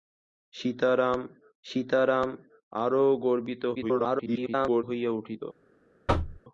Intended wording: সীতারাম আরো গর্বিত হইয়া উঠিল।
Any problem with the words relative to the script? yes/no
yes